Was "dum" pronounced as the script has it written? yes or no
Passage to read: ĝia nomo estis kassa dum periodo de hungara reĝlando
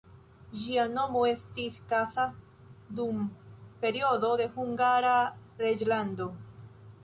yes